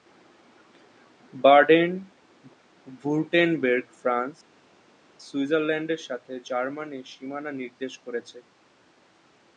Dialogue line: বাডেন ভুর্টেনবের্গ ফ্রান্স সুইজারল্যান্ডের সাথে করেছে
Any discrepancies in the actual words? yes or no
yes